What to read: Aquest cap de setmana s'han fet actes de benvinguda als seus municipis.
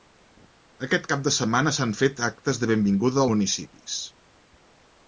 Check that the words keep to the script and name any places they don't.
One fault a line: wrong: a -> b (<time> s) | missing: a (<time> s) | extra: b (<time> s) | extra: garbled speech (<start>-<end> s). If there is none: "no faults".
missing: als seus (3.2 s)